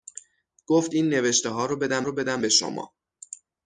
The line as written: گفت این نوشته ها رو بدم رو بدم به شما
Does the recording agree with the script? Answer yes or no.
yes